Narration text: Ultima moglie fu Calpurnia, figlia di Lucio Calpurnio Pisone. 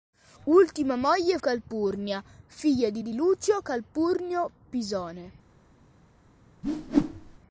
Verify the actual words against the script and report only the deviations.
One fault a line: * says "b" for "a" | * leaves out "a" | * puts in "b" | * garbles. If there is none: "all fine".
* leaves out "fu"
* puts in "di"